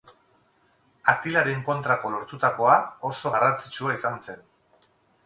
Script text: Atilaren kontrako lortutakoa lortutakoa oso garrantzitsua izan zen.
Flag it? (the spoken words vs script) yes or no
yes